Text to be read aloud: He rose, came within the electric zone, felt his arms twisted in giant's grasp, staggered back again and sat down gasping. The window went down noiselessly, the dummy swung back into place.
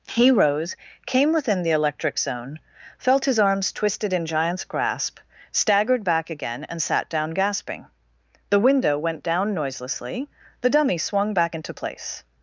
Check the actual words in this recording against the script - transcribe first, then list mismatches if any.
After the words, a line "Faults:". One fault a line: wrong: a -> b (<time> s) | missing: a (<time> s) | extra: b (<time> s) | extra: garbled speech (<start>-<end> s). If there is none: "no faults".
He rose, came within the electric zone, felt his arms twisted in giant's grasp, staggered back again and sat down gasping. The window went down noiselessly, the dummy swung back into place.
Faults:
no faults